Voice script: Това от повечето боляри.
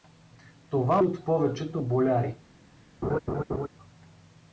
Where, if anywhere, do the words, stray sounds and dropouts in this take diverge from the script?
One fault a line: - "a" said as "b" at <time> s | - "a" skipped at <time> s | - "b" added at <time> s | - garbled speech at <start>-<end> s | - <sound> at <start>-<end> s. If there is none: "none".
- laugh at 3.0-3.7 s